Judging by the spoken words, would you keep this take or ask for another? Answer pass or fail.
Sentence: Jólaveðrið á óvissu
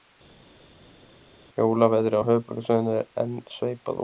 fail